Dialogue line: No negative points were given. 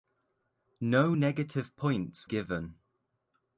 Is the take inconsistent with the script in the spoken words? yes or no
yes